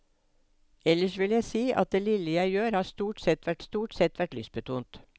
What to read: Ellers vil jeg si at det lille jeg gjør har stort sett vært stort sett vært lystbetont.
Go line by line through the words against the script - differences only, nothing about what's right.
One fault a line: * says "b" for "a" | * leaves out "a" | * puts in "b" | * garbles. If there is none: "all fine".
all fine